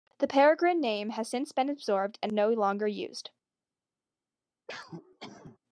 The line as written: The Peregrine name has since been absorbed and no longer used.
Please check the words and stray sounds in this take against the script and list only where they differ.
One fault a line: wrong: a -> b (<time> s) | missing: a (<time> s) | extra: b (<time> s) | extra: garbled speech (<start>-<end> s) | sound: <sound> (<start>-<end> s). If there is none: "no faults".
sound: cough (4.7-5.6 s)